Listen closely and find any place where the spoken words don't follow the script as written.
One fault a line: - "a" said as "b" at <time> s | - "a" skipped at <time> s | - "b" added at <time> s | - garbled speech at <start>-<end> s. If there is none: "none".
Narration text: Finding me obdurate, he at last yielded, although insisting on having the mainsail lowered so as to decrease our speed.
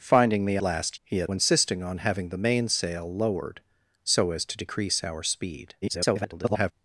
- "obdurate" said as "last" at 0.6 s
- "last yielded although" skipped at 1.3 s
- garbled speech at 5.8-6.7 s